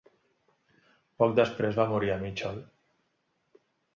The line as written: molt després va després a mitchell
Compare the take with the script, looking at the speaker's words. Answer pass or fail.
fail